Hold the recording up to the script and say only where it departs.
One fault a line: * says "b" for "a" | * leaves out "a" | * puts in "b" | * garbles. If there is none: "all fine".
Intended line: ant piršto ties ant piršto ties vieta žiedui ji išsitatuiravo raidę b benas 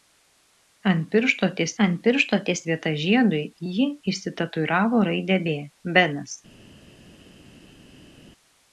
all fine